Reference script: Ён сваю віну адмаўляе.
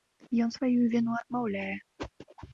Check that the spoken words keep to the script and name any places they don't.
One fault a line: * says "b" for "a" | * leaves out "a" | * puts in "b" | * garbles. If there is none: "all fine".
all fine